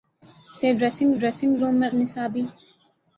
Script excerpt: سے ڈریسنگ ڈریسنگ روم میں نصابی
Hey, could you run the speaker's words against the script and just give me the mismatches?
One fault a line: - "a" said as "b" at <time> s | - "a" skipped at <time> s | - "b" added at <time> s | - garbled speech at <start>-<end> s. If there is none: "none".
none